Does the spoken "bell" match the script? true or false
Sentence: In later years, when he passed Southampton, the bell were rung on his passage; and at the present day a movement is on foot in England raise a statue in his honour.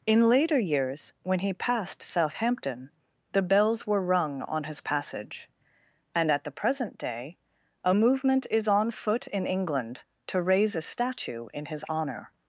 false